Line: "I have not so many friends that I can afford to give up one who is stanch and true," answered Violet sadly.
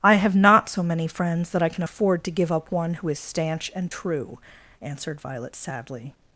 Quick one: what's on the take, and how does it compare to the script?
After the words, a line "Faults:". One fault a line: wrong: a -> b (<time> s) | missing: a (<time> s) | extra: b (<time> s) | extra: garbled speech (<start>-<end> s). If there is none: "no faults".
"I have not so many friends that I can afford to give up one who is stanch and true," answered Violet sadly.
Faults:
no faults